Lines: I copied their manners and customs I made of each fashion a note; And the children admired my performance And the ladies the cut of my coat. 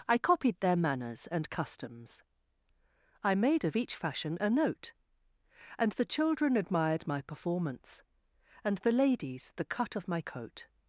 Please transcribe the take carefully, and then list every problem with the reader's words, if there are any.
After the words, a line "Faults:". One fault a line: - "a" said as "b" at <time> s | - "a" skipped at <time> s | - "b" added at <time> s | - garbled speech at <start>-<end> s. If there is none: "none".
I copied their manners and customs I made of each fashion a note; And the children admired my performance And the ladies the cut of my coat.
Faults:
none